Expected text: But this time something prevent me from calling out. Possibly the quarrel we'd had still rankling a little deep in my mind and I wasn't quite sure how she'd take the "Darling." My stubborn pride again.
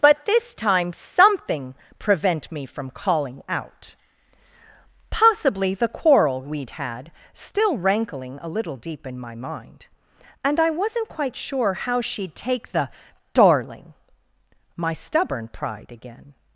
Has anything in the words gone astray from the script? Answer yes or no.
no